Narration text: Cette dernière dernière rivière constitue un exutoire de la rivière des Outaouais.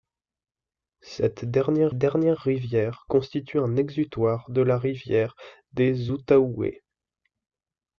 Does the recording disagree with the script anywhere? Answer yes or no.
no